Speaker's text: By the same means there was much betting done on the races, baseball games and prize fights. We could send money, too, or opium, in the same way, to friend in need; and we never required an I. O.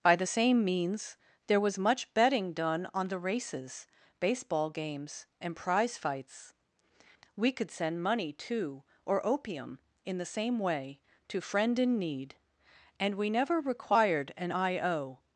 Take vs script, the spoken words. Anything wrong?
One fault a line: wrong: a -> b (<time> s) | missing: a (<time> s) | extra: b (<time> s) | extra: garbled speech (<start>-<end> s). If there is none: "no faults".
no faults